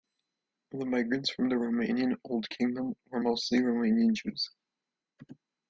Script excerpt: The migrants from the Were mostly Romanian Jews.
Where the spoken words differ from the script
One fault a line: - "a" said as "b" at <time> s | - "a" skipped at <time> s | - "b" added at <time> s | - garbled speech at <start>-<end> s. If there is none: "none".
- "Romanian Old Kingdom" added at 1.6 s